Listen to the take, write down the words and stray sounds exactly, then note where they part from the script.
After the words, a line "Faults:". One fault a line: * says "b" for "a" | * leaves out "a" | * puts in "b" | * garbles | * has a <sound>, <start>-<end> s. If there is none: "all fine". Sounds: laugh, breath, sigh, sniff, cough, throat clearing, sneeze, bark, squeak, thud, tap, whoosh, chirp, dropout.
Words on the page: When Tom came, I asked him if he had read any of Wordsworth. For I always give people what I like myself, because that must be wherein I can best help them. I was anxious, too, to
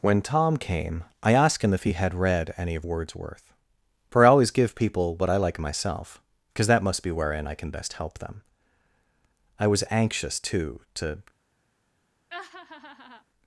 When Tom came, I asked him if he had read any of Wordsworth. For I always give people what I like myself, because that must be wherein I can best help them. I was anxious, too, to
Faults:
* has a laugh, 12.3-13.2 s